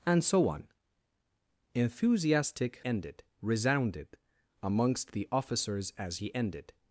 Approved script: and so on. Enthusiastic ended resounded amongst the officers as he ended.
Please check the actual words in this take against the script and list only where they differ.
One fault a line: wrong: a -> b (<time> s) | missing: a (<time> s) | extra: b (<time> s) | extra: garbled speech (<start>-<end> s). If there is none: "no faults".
no faults